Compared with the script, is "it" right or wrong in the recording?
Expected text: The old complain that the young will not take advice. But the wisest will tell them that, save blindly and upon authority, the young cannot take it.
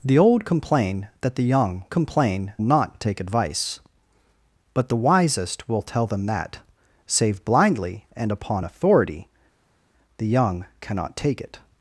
right